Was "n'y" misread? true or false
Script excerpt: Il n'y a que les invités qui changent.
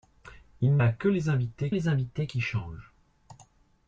true